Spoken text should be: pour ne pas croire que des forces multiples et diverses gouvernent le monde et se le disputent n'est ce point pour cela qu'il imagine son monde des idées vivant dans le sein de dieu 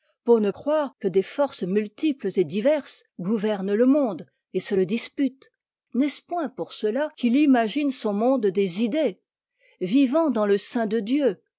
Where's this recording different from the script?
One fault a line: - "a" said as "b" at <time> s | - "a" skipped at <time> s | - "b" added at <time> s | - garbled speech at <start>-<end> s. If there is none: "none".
- "pas" skipped at 0.5 s